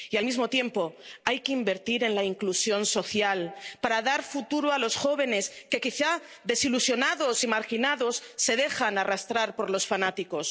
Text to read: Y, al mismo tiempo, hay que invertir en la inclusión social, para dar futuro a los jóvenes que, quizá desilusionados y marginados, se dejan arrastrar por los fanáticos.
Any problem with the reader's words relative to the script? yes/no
no